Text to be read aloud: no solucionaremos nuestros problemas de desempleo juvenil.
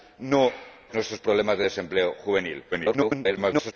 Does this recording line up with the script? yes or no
no